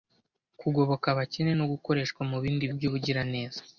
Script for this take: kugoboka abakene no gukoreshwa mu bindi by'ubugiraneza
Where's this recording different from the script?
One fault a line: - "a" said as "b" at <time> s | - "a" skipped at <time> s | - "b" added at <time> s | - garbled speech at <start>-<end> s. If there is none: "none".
none